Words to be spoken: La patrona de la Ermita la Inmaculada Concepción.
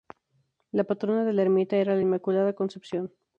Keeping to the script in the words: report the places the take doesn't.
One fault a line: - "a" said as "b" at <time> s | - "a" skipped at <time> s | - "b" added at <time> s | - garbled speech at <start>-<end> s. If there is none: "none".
- "era" added at 1.8 s